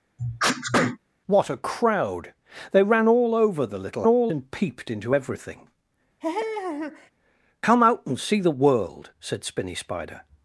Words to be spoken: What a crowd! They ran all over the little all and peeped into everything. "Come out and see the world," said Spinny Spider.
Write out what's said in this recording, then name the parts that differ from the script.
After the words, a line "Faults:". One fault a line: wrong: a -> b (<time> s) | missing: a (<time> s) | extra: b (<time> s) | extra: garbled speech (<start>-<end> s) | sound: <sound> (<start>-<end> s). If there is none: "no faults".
What a crowd! They ran all over the little all and peeped into everything. "Come out and see the world," said Spinny Spider.
Faults:
sound: sneeze (0.2-1.0 s)
sound: laugh (6.2-7.1 s)